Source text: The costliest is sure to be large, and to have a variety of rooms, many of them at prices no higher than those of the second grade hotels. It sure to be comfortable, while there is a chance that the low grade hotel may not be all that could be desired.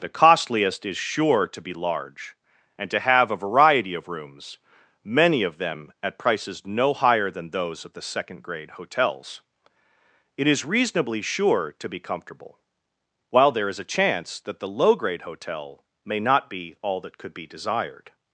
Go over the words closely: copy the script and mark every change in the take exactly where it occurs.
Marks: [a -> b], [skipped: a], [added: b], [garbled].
The costliest is sure to be large, and to have a variety of rooms, many of them at prices no higher than those of the second grade hotels. It [added: is reasonably] sure to be comfortable, while there is a chance that the low grade hotel may not be all that could be desired.